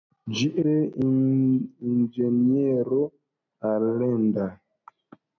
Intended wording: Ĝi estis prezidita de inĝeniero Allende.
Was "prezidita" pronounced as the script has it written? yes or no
no